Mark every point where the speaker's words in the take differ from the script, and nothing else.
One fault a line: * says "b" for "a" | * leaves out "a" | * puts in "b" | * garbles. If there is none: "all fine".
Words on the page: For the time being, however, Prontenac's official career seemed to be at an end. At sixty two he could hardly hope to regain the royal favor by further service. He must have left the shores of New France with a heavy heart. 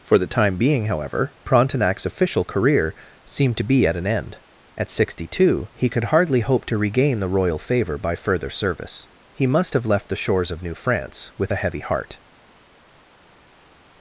all fine